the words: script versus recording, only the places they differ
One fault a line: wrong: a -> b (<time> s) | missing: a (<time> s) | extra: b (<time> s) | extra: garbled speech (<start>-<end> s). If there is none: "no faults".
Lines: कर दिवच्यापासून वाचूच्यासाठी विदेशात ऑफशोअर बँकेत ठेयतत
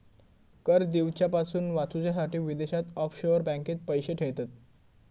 extra: पैशे (3.9 s)